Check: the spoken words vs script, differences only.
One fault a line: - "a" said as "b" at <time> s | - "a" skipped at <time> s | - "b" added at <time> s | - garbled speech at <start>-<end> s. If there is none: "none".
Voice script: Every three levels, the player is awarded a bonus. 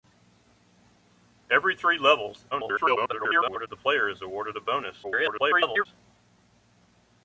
- garbled speech at 2.5-3.7 s
- garbled speech at 5.0-5.9 s